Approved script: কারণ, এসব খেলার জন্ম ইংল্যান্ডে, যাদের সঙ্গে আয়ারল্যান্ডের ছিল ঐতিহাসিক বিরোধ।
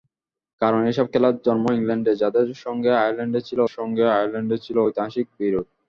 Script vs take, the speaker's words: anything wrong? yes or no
yes